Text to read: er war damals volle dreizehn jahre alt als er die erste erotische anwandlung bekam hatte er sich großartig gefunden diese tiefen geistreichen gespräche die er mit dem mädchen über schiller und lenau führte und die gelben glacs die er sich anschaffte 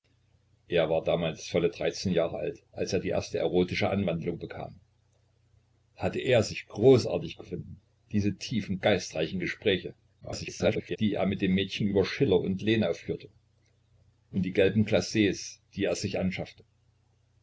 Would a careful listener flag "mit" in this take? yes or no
no